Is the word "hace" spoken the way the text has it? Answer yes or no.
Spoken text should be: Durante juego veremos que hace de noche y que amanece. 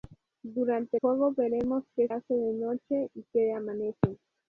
yes